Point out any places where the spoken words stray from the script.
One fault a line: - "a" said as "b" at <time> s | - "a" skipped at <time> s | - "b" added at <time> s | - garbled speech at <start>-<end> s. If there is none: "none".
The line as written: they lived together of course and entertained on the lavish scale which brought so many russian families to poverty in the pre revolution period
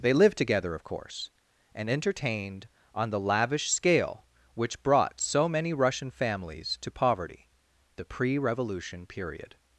- "in" skipped at 7.5 s